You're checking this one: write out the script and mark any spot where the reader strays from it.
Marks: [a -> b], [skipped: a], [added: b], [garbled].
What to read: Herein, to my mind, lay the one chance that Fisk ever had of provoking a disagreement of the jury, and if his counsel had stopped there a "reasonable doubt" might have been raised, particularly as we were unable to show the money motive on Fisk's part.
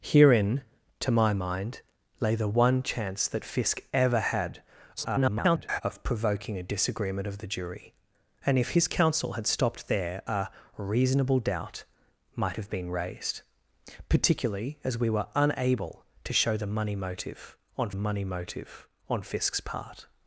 Herein, to my mind, lay the one chance that Fisk ever had [garbled] of provoking a disagreement of the jury, and if his counsel had stopped there a "reasonable doubt" might have been raised, particularly as we were unable to show the money motive on [added: money motive on] Fisk's part.